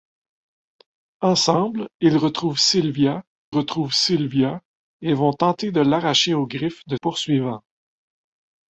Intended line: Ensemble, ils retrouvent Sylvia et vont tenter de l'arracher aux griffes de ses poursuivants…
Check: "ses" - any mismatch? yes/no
yes